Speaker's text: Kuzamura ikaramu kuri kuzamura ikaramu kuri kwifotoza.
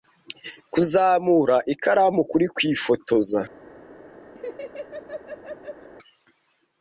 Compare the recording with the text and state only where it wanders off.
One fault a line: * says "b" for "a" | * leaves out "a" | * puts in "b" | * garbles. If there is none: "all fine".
* leaves out "kuzamura ikaramu kuri"